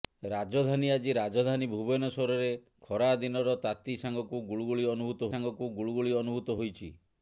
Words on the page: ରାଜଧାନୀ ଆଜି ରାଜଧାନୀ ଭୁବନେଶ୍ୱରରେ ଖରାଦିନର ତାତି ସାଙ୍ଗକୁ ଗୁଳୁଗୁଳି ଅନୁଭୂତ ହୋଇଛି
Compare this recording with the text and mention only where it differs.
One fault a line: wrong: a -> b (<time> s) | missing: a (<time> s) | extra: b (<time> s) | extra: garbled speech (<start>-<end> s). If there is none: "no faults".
extra: ସାଙ୍ଗକୁ ଗୁଳୁଗୁଳି ଅନୁଭୂତ (5.3 s)